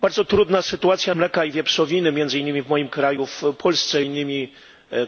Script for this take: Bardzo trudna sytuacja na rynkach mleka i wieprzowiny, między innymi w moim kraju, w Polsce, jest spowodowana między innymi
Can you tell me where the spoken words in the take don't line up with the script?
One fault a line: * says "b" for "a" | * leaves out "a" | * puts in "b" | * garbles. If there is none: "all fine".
* leaves out "na rynkach"
* leaves out "jest spowodowana między"